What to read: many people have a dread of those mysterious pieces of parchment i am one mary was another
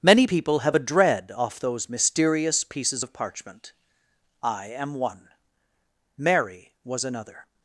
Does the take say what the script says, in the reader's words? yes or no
no